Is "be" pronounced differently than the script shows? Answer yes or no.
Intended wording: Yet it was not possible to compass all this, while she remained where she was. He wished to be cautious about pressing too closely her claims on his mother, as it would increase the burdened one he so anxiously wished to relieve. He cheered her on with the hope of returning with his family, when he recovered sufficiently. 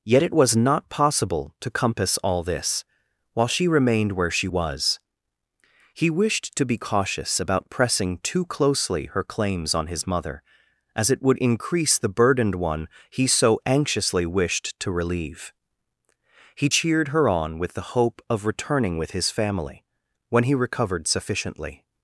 no